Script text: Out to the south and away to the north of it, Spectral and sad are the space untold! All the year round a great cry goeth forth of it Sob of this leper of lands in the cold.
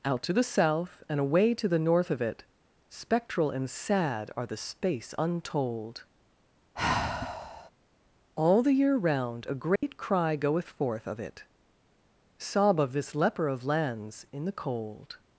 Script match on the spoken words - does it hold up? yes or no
yes